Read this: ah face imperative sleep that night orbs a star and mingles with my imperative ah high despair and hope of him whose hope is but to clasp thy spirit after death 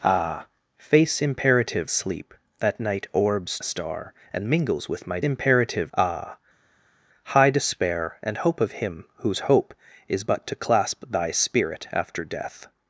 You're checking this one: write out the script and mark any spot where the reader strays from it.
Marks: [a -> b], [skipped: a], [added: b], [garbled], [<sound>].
ah face imperative sleep that night orbs a star and mingles with my imperative ah high despair and hope of him whose hope is but to clasp thy spirit after death